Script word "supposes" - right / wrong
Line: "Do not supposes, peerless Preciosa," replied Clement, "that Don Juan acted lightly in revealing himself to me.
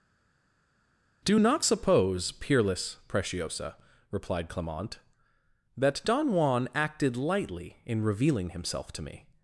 wrong